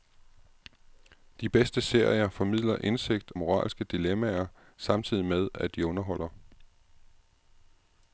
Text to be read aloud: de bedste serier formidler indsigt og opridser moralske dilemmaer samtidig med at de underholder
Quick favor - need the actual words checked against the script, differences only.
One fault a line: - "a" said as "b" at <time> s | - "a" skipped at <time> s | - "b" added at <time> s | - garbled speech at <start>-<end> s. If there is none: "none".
- "og opridser" skipped at 3.3 s